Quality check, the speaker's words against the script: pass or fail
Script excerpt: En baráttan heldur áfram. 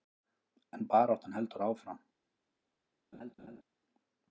pass